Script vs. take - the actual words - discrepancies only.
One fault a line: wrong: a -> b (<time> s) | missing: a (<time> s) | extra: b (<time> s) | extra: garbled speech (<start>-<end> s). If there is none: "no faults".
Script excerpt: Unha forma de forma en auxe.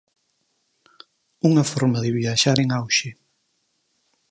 wrong: forma -> viaxar (2.2 s)